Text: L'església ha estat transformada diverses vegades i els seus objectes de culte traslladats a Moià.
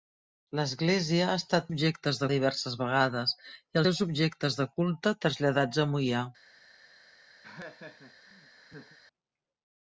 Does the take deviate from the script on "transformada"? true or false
true